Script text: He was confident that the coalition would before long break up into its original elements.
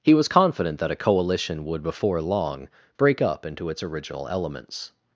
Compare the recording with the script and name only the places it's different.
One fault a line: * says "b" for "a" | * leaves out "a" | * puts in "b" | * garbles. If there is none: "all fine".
* says "a" for "the"